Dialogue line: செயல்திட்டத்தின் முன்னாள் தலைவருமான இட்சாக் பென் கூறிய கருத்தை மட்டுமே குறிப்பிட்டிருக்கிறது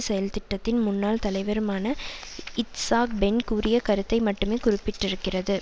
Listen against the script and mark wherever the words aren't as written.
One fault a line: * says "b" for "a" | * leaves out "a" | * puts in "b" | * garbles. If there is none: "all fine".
all fine